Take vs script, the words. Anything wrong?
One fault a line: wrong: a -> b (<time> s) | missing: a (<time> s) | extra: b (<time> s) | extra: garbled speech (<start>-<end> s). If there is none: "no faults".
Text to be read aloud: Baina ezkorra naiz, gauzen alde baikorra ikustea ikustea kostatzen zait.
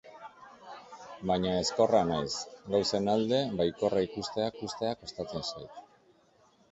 no faults